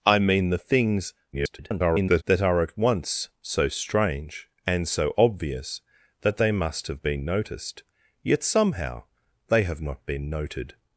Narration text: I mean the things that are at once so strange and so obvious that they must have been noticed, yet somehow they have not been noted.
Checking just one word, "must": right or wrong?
right